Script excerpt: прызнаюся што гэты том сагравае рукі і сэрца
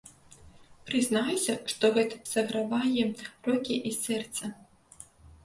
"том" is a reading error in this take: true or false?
true